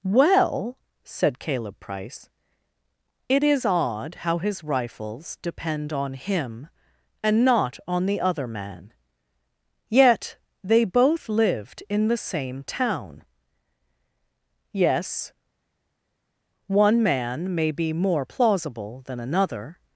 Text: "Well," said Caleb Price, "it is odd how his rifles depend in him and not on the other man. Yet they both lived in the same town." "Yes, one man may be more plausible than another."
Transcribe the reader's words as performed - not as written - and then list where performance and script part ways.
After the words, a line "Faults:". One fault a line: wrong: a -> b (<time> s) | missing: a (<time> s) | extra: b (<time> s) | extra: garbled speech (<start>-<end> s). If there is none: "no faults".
"Well," said Caleb Price, "it is odd how his rifles depend on him and not on the other man. Yet they both lived in the same town." "Yes, one man may be more plausible than another."
Faults:
wrong: in -> on (5.9 s)